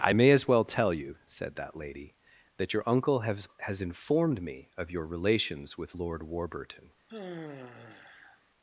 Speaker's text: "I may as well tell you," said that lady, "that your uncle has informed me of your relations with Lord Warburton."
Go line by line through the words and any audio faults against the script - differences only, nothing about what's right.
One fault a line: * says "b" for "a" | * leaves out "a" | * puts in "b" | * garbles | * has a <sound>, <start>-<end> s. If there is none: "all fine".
* puts in "has"
* has a sigh, 7.1-8.4 s